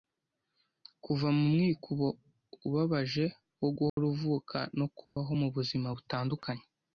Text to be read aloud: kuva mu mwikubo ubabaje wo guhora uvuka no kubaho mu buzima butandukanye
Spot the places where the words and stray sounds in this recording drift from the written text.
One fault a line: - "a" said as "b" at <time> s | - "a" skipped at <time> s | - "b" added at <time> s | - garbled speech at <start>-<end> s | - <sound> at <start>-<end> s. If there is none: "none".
- dropout at 3.9-4.0 s
- dropout at 5.0-5.2 s